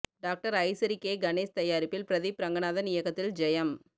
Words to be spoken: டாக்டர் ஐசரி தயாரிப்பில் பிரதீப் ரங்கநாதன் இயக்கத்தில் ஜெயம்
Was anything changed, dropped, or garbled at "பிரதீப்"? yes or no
no